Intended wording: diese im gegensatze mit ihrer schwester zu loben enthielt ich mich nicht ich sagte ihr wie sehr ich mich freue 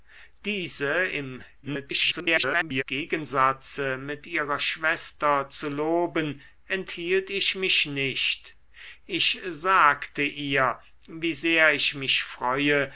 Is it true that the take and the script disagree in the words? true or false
true